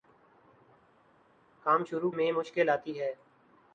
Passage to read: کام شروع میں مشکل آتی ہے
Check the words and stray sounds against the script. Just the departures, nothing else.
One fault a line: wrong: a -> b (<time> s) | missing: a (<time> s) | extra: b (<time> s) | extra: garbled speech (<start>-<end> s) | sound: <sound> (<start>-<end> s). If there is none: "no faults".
no faults